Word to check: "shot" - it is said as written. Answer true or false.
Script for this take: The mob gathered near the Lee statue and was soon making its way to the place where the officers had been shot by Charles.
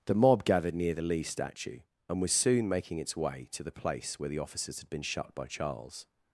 false